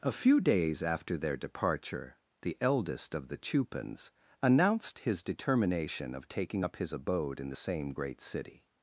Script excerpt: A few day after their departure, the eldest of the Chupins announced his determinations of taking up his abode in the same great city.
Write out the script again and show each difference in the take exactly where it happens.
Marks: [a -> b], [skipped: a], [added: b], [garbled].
A few [day -> days] after their departure, the eldest of the Chupins announced his [determinations -> determination] of taking up his abode in the same great city.